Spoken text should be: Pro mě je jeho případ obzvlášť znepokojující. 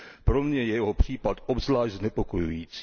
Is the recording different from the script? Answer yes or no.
no